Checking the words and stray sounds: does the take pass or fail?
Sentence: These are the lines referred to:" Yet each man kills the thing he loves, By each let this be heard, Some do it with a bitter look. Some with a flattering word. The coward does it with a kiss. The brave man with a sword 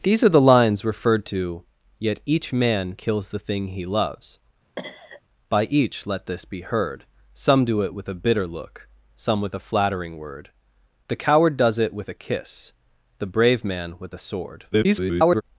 fail